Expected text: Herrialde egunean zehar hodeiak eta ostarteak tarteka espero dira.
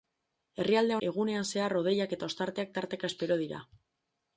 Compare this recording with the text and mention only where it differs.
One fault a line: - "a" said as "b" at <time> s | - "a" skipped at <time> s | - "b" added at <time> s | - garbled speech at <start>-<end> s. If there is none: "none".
none